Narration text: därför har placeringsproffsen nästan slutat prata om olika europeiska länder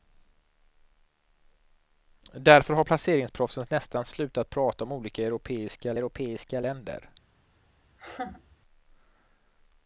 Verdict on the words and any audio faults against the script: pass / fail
fail